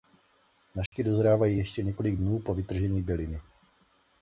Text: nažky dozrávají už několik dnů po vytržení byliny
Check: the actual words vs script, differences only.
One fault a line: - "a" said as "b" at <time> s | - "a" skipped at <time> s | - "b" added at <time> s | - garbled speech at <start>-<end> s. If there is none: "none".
- "už" said as "ještě" at 1.6 s